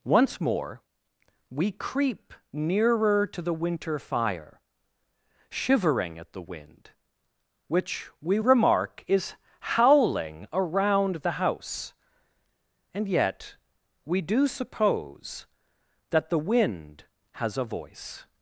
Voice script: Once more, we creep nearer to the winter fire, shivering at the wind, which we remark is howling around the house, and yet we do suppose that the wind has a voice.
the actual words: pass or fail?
pass